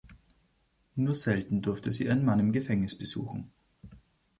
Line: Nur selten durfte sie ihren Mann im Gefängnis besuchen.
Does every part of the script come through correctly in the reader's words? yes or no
yes